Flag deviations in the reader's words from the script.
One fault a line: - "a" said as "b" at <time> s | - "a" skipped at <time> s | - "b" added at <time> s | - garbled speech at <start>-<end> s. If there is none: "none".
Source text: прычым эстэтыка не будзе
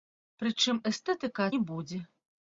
none